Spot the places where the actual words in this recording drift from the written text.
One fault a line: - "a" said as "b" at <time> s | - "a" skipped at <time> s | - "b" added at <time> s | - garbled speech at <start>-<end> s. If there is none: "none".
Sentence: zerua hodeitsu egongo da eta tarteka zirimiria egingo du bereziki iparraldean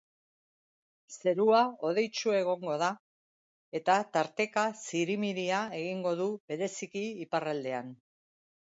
none